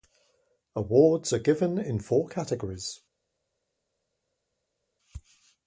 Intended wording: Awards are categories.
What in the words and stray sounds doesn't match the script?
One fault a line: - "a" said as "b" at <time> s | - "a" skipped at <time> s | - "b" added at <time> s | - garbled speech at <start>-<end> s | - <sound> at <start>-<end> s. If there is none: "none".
- "given in four" added at 1.4 s